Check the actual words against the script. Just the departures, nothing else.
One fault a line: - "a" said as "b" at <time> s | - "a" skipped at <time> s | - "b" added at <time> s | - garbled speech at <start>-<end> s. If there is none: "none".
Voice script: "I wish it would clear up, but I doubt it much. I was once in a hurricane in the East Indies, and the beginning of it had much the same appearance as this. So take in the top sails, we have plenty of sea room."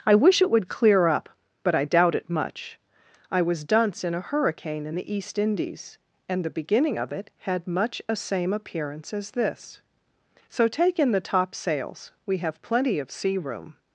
- "once" said as "dunce" at 3.6 s
- "the" said as "a" at 8.1 s